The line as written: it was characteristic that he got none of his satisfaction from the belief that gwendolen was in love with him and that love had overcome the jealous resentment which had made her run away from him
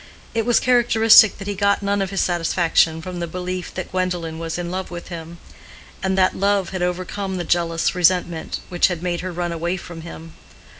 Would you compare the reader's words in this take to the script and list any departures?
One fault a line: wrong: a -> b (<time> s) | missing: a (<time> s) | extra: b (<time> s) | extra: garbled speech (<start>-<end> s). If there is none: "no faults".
no faults